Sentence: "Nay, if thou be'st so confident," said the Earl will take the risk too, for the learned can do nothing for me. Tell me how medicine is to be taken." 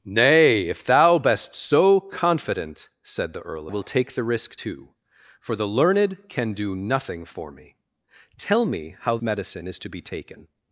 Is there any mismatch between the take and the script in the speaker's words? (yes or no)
no